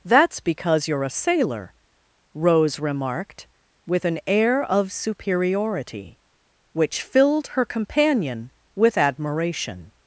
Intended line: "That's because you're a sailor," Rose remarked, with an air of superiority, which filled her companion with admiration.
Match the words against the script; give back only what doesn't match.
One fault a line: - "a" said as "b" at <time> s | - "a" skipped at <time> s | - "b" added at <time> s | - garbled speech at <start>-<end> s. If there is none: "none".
none